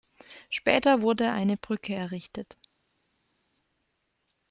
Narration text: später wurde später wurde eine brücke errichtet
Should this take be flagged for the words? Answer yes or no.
yes